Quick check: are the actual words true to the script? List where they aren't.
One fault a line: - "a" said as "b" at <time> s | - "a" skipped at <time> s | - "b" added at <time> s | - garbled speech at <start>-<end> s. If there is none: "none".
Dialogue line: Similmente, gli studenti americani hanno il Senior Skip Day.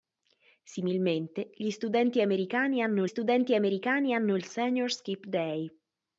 - "studenti americani hanno" added at 3.0 s